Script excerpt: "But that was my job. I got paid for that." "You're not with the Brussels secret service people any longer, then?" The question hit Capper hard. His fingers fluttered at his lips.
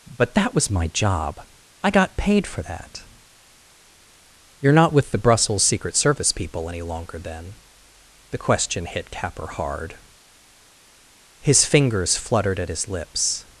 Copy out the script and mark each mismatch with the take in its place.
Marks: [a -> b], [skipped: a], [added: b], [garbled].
"But that was my job. I got paid for that." "You're not with the Brussels secret service people any longer, then?" The question hit Capper hard. His fingers fluttered at his lips.